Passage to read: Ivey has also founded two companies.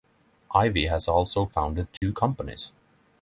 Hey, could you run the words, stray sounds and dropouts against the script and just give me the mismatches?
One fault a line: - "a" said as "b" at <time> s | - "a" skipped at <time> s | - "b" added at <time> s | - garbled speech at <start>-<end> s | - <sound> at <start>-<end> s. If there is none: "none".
- dropout at 2.0-2.0 s